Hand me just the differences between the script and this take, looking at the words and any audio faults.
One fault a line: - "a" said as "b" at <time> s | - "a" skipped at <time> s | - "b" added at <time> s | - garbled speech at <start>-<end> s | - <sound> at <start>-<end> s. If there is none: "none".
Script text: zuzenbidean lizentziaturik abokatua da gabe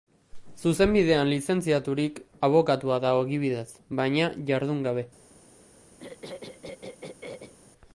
- "ogibidez baina jardun" added at 3.2 s
- throat clearing at 6.0-7.5 s